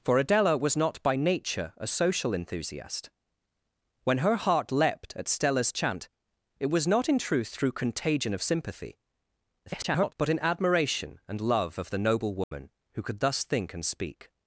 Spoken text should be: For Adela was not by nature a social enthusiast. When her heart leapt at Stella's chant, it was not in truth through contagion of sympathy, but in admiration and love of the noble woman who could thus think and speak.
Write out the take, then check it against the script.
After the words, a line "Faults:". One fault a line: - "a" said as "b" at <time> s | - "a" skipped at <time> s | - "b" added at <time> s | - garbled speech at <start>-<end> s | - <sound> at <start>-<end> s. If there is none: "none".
For Adela was not by nature a social enthusiast. When her heart leapt at Stella's chant, it was not in truth through contagion of sympathy, [garbled] but in admiration and love of the noble woman who could thus think and speak.
Faults:
- garbled speech at 9.7-10.1 s
- dropout at 12.4-12.5 s